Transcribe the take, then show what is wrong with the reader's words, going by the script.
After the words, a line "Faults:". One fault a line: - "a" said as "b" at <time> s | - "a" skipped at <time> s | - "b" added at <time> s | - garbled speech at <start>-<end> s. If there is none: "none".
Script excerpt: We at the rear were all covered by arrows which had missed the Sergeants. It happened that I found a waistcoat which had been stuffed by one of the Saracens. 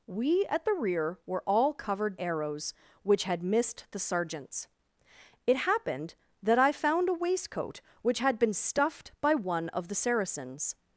We at the rear were all covered arrows which had missed the Sergeants. It happened that I found a waistcoat which had been stuffed by one of the Saracens.
Faults:
- "by" skipped at 2.2 s